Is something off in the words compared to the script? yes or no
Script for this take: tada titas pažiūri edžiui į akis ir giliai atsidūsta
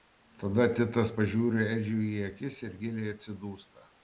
no